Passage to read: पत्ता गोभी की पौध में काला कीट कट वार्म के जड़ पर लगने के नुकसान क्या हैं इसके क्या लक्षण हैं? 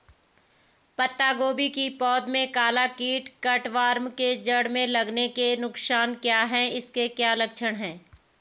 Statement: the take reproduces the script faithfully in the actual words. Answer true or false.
false